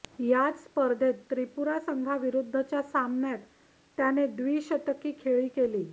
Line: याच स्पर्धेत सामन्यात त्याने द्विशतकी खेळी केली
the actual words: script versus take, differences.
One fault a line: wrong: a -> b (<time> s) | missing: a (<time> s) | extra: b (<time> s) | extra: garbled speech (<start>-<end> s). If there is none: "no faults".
extra: त्रिपुरा संघाविरुद्धच्या (1.3 s)